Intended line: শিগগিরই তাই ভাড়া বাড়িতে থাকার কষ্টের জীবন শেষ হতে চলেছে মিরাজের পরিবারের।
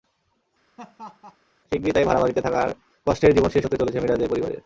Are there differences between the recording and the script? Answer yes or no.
no